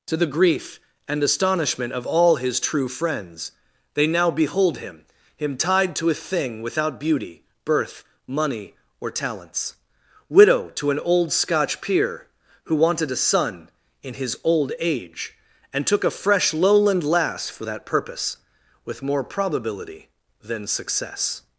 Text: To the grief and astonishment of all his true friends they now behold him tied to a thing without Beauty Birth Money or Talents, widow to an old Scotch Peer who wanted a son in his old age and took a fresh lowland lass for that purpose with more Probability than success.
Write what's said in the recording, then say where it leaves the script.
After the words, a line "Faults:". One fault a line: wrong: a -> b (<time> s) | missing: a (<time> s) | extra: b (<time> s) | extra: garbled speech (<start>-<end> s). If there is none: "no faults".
To the grief and astonishment of all his true friends they now behold him him tied to a thing without Beauty Birth Money or Talents, widow to an old Scotch Peer who wanted a son in his old age and took a fresh lowland lass for that purpose with more Probability than success.
Faults:
extra: him (5.4 s)